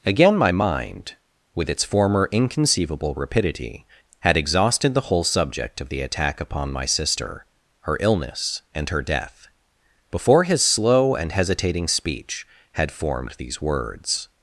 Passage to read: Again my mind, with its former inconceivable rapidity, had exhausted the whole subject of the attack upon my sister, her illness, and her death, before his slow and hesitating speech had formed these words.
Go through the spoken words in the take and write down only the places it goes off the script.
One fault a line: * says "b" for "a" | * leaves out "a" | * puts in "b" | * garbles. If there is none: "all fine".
all fine